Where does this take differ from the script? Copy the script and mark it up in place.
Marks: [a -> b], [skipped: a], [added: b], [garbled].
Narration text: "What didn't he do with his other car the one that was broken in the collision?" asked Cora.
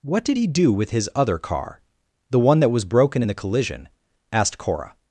"What [didn't -> did] he do with his other car the one that was broken in the collision?" asked Cora.